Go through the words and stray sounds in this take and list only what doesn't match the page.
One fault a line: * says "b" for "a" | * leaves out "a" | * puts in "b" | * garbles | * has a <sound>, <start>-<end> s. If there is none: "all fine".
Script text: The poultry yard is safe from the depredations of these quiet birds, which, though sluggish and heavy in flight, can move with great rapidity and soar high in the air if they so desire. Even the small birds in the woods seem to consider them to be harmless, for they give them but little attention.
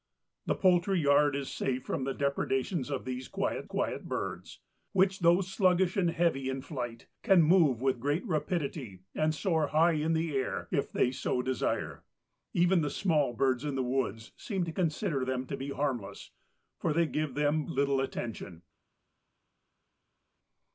* puts in "quiet"
* leaves out "but"